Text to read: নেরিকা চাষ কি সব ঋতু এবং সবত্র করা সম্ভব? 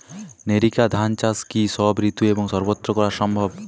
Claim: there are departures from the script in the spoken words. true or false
true